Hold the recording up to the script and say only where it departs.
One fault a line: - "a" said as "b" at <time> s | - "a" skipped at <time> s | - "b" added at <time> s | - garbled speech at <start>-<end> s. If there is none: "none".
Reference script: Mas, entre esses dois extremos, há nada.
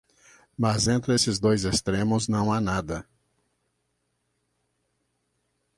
- "não" added at 2.3 s